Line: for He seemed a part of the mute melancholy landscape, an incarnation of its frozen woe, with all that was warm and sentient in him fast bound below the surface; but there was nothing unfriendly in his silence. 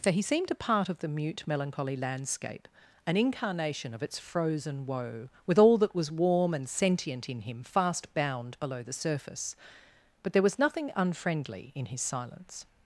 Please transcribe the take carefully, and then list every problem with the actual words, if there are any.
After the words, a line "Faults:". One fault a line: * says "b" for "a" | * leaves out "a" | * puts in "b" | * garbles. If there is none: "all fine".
for He seemed a part of the mute melancholy landscape, an incarnation of its frozen woe, with all that was warm and sentient in him fast bound below the surface; but there was nothing unfriendly in his silence.
Faults:
all fine